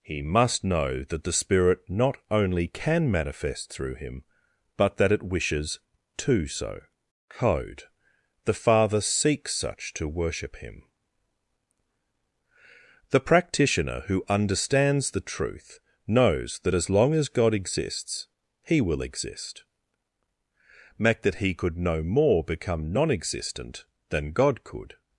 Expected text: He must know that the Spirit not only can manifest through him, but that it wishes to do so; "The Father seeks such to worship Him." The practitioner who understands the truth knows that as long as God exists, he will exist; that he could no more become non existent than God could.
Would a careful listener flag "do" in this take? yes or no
yes